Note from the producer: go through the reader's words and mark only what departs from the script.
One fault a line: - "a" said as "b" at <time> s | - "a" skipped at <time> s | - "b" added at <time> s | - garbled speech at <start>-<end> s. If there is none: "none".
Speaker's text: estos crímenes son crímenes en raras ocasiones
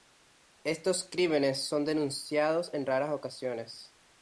- "crímenes" said as "denunciados" at 1.9 s